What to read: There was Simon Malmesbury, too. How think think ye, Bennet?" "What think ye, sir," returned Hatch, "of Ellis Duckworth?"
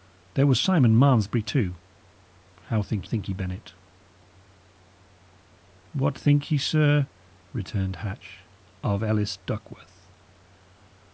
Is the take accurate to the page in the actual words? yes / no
yes